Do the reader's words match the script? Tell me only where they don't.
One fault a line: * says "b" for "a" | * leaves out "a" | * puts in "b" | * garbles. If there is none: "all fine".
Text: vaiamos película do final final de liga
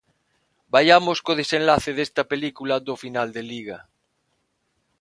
* puts in "co desenlace desta"
* leaves out "final"